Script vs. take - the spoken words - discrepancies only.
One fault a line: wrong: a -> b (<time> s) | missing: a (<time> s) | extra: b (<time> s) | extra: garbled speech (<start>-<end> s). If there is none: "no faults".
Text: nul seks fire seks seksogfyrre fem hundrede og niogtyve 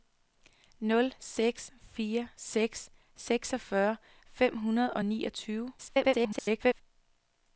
extra: garbled speech (5.8-6.8 s)